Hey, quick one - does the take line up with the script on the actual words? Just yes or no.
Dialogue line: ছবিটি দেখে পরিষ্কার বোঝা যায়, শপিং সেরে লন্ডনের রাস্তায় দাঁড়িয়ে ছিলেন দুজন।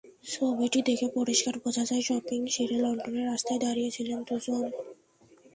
yes